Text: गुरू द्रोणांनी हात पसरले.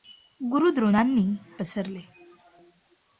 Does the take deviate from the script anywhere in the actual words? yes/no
yes